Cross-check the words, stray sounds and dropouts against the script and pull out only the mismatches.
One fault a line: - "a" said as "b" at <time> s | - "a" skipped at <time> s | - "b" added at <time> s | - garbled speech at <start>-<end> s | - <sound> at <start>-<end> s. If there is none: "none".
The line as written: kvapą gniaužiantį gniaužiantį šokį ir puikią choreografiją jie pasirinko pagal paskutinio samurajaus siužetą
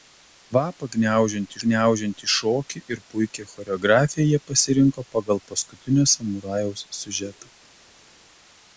none